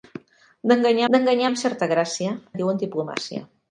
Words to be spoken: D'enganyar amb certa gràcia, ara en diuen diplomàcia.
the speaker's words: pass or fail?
fail